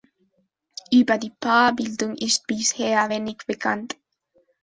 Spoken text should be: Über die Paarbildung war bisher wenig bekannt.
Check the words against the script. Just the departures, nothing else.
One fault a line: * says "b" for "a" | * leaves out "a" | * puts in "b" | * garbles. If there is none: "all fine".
* says "ist" for "war"